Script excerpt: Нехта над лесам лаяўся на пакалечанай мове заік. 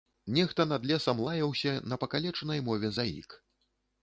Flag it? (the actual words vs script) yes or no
no